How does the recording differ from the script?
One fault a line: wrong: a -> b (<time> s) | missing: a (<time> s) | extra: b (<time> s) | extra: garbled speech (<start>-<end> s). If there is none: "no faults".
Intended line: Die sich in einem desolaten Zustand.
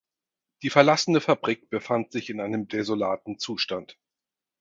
extra: verlassene Fabrik befand (0.7 s)